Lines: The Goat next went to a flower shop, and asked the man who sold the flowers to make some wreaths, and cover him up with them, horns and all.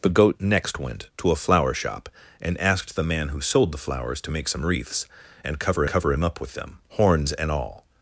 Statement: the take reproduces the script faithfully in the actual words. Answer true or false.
false